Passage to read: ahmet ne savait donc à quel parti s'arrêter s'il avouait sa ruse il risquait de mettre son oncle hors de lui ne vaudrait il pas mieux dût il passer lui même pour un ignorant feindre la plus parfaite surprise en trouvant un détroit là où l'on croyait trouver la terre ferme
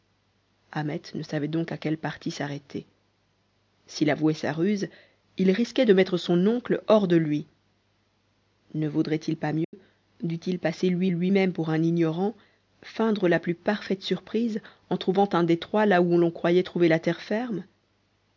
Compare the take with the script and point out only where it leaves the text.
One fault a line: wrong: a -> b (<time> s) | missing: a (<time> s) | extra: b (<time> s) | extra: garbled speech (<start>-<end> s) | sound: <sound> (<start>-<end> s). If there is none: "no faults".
sound: dropout (9.6-9.7 s)
extra: lui (11.1 s)